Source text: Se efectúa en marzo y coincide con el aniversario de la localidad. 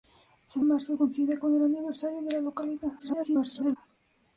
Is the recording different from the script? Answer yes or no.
yes